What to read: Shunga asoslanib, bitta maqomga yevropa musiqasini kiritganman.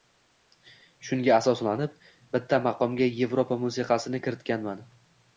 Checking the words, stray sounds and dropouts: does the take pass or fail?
pass